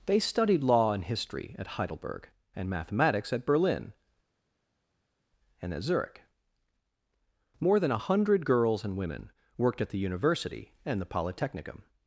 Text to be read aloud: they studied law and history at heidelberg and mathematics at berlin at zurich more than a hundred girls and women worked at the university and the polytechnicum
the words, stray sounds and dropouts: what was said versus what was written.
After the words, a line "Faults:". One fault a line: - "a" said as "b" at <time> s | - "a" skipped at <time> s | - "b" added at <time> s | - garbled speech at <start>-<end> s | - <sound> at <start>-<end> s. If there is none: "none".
they studied law and history at heidelberg and mathematics at berlin and at zurich more than a hundred girls and women worked at the university and the polytechnicum
Faults:
- "and" added at 5.6 s